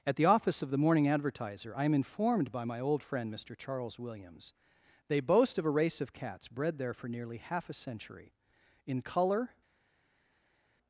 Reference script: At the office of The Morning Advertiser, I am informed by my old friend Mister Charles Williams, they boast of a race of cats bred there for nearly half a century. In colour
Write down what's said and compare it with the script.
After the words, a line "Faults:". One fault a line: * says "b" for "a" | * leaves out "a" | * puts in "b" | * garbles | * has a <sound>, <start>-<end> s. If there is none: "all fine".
At the office of The Morning Advertiser, I am informed by my old friend Mister Charles Williams, they boast of a race of cats bred there for nearly half a century. In colour
Faults:
all fine